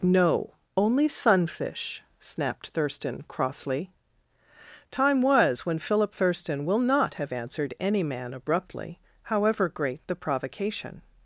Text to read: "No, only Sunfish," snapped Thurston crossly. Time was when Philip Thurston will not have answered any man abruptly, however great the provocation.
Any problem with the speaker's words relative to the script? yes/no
no